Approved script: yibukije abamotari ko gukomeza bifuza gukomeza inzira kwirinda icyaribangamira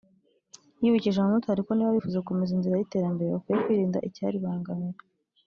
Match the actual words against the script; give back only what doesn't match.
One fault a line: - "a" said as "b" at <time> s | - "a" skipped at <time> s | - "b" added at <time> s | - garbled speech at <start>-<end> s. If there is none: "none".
- "gukomeza" said as "niba" at 1.7 s
- "y'iterambere bakwiye" added at 2.8 s